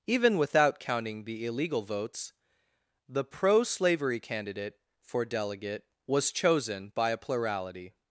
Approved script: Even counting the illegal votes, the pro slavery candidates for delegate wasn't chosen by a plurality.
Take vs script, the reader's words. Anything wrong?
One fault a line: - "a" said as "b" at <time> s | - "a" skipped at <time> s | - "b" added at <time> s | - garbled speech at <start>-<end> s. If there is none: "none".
- "without" added at 0.4 s
- "candidates" said as "candidate" at 4.2 s
- "wasn't" said as "was" at 6.1 s